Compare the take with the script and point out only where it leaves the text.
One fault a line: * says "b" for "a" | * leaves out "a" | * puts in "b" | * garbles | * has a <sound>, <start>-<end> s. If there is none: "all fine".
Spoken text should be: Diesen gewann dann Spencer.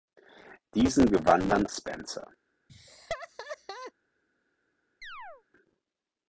* has a laugh, 2.7-3.9 s
* has a chirp, 5.0-5.4 s